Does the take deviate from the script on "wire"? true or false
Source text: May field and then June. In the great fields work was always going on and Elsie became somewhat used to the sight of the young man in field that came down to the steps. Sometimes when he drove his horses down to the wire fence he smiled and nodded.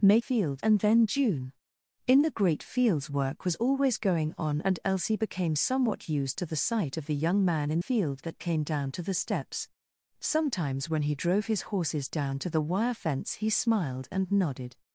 false